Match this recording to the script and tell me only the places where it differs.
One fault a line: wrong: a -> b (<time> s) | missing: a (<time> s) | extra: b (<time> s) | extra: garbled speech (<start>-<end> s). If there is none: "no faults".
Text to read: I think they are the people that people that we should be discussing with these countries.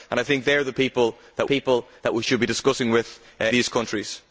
no faults